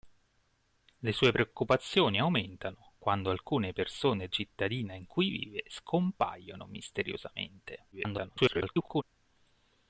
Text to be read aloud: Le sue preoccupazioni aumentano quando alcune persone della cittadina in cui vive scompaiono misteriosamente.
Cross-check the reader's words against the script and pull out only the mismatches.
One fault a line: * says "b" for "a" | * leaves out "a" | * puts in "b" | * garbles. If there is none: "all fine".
* leaves out "della"
* garbles